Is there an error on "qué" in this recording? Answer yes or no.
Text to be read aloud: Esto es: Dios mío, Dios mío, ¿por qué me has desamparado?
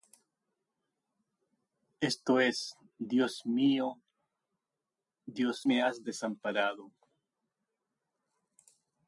yes